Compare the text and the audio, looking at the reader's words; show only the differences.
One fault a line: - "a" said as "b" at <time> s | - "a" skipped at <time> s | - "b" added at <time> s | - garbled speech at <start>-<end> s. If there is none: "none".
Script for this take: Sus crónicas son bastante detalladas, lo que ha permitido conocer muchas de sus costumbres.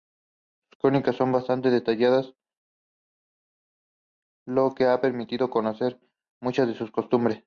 none